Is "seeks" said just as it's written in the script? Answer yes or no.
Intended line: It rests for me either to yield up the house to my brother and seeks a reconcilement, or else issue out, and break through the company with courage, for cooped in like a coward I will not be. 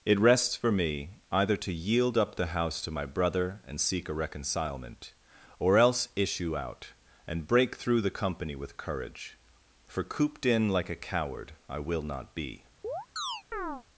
no